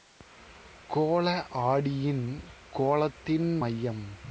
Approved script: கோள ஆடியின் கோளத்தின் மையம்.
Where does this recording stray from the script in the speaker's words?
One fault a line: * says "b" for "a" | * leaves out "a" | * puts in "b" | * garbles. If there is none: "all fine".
all fine